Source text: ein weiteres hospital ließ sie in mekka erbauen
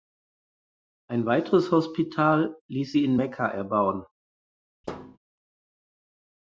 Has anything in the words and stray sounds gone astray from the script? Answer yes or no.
yes